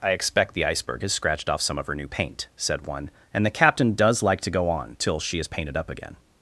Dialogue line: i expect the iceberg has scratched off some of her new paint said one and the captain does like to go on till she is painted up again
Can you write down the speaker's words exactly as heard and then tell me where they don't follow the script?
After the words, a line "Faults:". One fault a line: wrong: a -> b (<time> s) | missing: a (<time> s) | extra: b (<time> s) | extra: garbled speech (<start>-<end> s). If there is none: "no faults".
i expect the iceberg has scratched off some of her new paint said one and the captain does like to go on till she is painted up again
Faults:
no faults